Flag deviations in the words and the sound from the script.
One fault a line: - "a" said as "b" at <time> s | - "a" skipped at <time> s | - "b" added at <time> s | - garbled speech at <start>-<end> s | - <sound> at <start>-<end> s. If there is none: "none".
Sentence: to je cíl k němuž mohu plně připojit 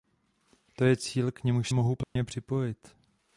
- dropout at 2.0-2.2 s